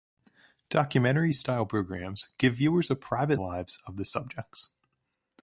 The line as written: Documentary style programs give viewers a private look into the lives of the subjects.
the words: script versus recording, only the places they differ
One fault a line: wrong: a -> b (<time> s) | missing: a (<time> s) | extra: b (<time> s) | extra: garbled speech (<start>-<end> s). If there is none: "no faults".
missing: look into the (3.4 s)